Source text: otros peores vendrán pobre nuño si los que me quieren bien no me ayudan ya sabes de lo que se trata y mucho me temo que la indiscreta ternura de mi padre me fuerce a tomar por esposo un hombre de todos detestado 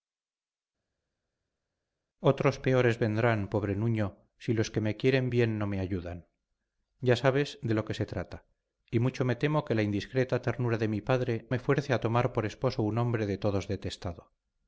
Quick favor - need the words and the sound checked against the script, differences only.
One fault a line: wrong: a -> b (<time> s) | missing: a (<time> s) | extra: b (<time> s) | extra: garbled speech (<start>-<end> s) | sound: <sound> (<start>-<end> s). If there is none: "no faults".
no faults